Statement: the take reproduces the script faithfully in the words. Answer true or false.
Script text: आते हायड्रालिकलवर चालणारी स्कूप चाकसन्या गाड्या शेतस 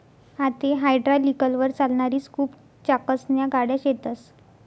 true